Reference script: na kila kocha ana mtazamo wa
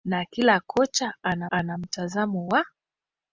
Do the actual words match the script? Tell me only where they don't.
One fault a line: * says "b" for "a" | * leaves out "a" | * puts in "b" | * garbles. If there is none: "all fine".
* puts in "ana"